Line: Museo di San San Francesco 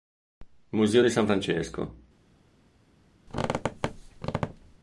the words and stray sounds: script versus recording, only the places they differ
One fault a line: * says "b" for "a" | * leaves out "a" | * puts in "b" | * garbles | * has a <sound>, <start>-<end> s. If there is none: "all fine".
* leaves out "San"
* has a squeak, 3.3-4.8 s